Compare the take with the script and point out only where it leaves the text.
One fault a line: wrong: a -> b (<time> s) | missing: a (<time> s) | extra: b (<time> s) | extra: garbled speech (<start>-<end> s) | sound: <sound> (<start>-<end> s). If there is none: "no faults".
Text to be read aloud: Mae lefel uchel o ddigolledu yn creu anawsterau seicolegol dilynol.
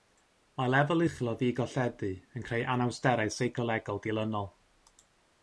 no faults